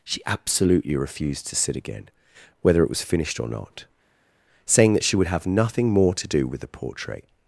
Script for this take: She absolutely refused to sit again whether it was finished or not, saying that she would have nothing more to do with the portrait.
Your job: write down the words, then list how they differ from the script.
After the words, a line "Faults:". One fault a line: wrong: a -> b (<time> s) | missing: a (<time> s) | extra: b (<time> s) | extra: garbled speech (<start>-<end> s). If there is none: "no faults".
She absolutely refused to sit again whether it was finished or not, saying that she would have nothing more to do with the portrait.
Faults:
no faults